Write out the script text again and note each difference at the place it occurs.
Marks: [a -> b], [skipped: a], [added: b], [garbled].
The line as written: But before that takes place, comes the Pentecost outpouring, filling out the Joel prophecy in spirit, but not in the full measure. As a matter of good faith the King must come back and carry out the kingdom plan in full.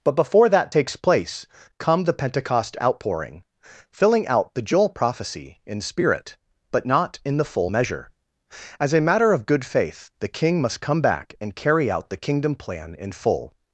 But before that takes place, [comes -> come] the Pentecost outpouring, filling out the Joel prophecy in spirit, but not in the full measure. As a matter of good faith the King must come back and carry out the kingdom plan in full.